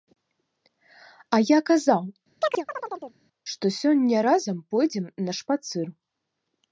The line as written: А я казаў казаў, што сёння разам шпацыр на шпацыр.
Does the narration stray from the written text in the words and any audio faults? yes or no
yes